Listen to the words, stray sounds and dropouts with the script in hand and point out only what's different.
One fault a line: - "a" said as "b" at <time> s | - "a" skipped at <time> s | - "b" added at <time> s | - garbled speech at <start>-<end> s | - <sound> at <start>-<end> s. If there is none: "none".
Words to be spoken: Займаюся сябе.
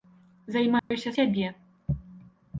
- dropout at 0.8-0.9 s